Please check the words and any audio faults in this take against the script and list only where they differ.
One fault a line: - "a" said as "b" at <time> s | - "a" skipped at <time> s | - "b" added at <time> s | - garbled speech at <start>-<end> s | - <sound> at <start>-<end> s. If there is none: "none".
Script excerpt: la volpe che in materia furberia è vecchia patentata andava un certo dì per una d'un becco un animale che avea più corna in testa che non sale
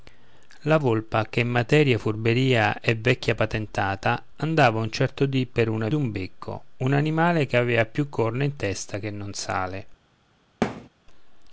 - thud at 10.6-10.9 s